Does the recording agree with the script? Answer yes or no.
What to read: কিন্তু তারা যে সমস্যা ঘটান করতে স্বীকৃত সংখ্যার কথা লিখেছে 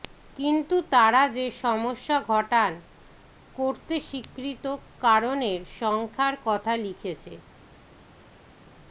no